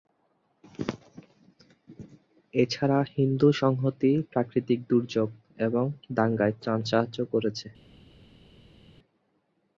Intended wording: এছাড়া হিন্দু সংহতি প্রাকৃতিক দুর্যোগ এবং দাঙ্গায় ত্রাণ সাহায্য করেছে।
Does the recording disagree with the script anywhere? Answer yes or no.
no